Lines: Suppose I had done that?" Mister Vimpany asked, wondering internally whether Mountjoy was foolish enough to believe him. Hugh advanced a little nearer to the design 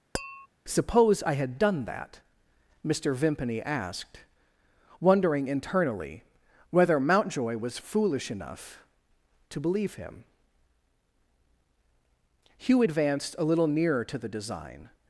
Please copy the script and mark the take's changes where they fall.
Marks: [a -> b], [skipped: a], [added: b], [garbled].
Suppose I had done that?" Mister Vimpany asked, wondering internally whether Mountjoy was foolish enough to believe him. Hugh advanced a little nearer to the design